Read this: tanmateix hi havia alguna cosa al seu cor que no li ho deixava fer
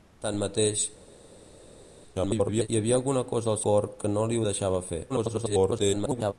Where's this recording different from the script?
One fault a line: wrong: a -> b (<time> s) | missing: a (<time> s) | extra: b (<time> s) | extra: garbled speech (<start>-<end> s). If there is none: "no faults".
extra: garbled speech (2.1-2.7 s)
missing: seu (3.6 s)
extra: garbled speech (5.1-6.3 s)